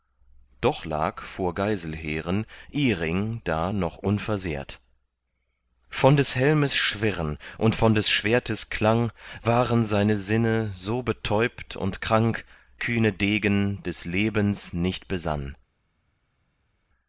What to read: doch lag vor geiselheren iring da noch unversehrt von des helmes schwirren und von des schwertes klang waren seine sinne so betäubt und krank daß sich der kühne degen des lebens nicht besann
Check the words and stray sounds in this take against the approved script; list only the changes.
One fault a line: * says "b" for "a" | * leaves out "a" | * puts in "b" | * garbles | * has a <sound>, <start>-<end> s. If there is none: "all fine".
* leaves out "daß sich der"